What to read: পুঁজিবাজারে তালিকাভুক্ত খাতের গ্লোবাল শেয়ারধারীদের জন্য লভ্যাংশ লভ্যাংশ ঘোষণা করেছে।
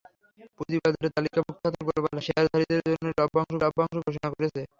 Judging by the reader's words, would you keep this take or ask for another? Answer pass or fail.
pass